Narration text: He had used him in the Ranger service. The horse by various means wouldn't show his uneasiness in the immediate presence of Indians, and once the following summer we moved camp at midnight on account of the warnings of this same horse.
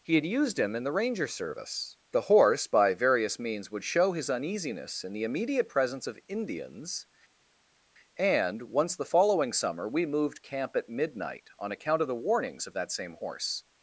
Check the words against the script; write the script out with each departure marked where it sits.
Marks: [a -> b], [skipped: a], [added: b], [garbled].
He had used him in the Ranger service. The horse by various means [wouldn't -> would] show his uneasiness in the immediate presence of Indians, and once the following summer we moved camp at midnight on account of the warnings of [this -> that] same horse.